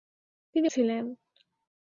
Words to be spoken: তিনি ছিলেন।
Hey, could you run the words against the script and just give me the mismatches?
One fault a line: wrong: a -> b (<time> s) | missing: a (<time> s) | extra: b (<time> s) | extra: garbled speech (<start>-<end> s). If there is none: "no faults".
no faults